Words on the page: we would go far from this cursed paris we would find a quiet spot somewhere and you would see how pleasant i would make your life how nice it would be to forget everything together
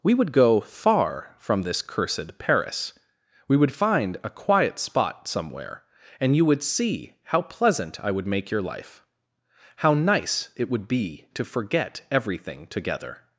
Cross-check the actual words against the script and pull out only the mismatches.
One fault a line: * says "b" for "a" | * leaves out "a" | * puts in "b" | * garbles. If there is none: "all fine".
all fine